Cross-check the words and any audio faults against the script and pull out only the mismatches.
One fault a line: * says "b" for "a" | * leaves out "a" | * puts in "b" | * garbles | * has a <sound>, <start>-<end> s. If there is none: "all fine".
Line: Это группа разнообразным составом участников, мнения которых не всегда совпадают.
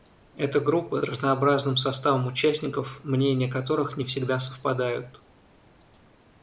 all fine